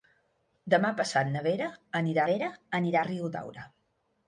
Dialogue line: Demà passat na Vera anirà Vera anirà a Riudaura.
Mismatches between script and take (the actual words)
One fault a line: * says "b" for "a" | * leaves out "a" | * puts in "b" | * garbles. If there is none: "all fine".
all fine